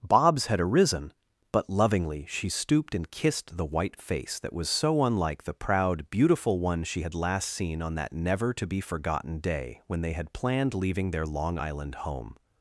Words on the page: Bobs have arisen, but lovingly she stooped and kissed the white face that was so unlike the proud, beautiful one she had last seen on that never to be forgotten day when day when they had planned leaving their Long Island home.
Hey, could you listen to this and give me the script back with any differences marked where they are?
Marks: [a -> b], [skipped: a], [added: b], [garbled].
Bobs [have -> had] arisen, but lovingly she stooped and kissed the white face that was so unlike the proud, beautiful one she had last seen on that never to be forgotten day when [skipped: day when] they had planned leaving their Long Island home.